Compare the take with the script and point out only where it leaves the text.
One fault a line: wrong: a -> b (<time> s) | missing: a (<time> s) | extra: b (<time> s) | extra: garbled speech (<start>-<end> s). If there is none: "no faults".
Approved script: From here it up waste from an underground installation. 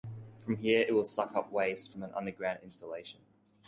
extra: will suck (0.9 s)